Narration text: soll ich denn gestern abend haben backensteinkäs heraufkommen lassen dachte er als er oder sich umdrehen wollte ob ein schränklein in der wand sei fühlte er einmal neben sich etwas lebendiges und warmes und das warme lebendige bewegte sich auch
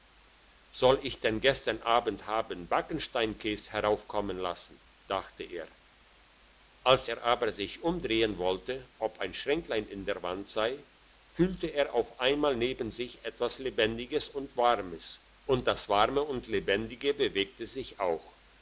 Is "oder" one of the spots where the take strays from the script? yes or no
yes